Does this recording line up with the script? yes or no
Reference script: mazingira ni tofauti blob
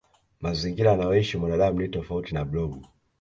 no